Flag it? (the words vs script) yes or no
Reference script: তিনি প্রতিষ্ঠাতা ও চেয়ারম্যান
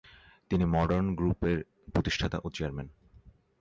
yes